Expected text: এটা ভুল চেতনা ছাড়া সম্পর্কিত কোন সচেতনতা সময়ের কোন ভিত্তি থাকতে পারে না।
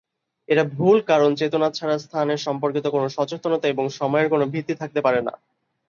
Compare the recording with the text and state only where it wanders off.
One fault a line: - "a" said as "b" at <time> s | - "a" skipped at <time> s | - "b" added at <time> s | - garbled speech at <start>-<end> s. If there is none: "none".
- "কারণ" added at 1.0 s
- "স্থানের" added at 2.0 s
- "এবং" added at 3.7 s